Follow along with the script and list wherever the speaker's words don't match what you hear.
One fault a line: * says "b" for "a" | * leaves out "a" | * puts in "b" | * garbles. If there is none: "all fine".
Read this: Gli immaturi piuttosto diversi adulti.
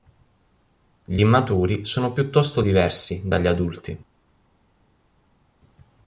* puts in "sono"
* puts in "dagli"